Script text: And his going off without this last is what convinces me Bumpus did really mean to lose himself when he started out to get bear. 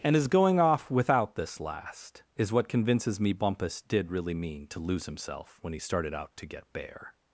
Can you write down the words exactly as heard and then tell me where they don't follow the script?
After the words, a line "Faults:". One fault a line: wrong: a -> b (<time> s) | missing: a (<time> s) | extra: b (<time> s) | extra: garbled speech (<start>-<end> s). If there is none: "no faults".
And his going off without this last is what convinces me Bumpus did really mean to lose himself when he started out to get bear.
Faults:
no faults